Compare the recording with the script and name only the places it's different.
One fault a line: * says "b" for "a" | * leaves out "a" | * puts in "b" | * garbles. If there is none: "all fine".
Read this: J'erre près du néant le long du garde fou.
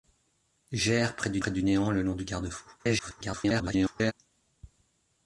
* puts in "près du"
* garbles